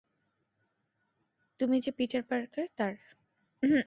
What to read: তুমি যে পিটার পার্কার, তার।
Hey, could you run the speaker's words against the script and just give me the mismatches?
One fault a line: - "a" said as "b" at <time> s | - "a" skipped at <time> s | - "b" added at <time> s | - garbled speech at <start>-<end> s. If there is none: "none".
none